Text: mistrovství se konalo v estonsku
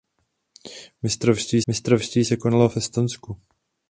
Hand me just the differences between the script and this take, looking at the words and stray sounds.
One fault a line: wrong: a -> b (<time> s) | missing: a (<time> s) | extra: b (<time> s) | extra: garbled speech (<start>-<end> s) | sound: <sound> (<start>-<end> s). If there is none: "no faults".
extra: mistrovství (1.7 s)